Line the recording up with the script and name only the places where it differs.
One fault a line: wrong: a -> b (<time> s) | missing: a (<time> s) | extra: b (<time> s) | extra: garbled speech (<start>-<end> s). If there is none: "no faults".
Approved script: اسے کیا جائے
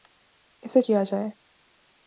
no faults